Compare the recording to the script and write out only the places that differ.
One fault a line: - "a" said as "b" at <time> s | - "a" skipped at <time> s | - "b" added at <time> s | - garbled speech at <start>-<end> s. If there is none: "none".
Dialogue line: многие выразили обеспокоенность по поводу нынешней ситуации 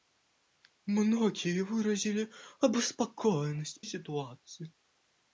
- "по поводу нынешней" skipped at 3.8 s